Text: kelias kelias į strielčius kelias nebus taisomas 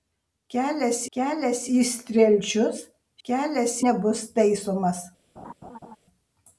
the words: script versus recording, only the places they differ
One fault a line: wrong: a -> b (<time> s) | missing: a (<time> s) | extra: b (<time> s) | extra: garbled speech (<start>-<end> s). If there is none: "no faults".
no faults